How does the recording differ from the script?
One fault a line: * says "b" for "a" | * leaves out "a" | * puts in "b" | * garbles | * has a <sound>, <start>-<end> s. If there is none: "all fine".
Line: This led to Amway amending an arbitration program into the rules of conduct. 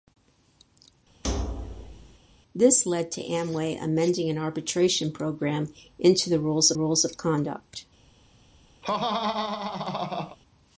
* has a thud, 1.2-2.2 s
* puts in "rules"
* has a laugh, 8.8-10.4 s